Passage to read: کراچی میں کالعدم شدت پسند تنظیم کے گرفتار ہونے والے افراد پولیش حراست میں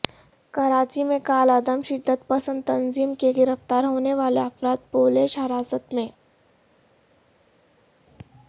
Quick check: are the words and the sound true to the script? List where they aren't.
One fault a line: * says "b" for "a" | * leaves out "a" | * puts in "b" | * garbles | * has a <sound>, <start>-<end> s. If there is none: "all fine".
all fine